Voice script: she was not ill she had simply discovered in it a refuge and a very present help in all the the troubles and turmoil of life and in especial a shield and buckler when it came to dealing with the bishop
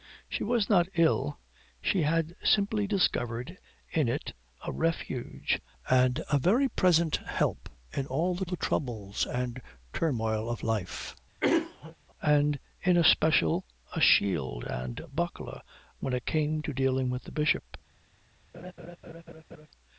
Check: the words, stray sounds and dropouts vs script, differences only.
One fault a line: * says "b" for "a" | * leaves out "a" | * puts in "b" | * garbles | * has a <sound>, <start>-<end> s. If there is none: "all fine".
* has a throat clearing, 11.4-12.0 s
* has a laugh, 18.5-19.7 s